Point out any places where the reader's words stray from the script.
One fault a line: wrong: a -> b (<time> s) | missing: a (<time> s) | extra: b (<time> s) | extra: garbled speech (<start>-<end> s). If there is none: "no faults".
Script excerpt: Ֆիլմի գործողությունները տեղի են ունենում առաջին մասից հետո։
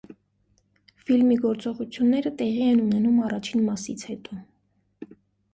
no faults